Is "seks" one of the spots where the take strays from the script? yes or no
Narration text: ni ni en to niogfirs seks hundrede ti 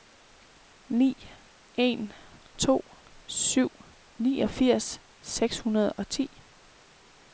no